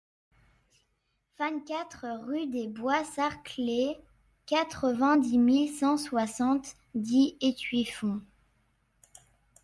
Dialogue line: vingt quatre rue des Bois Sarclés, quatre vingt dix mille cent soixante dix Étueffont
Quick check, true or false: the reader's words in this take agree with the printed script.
true